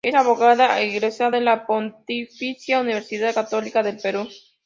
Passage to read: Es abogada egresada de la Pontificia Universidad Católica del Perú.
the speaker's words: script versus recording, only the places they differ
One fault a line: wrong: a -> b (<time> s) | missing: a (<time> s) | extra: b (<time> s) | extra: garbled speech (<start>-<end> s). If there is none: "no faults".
no faults